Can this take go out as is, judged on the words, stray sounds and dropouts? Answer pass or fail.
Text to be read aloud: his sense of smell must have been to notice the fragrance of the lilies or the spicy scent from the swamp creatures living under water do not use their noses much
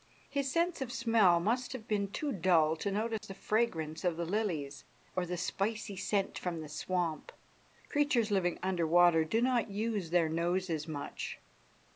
fail